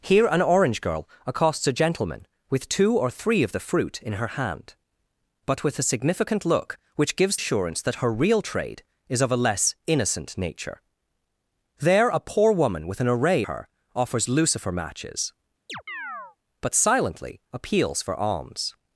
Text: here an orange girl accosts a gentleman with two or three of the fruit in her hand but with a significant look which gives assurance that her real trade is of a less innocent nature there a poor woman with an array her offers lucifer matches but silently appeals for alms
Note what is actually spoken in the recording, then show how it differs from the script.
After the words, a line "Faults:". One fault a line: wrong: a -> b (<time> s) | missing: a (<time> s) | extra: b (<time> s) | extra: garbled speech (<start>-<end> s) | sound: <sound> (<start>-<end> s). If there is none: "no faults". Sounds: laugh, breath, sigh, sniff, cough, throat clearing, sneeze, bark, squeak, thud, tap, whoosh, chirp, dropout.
here an orange girl accosts a gentleman with two or three of the fruit in her hand but with a significant look which gives assurance that her real trade is of a less innocent nature there a poor woman with an array her offers lucifer matches but silently appeals for alms
Faults:
sound: chirp (15.7-16.4 s)